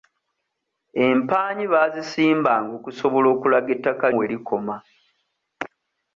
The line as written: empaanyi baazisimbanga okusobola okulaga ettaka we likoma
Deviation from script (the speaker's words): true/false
false